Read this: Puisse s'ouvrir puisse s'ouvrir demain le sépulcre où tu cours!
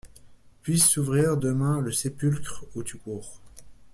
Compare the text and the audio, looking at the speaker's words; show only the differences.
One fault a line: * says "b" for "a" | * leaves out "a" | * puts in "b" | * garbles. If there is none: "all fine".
* leaves out "puisse s'ouvrir"